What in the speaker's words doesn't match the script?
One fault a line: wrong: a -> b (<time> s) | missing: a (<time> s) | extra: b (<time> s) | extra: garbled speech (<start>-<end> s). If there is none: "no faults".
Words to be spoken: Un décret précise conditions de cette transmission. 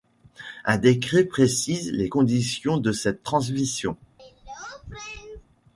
extra: les (1.9 s)